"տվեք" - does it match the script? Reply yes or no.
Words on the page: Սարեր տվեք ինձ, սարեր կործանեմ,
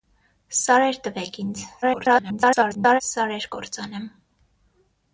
yes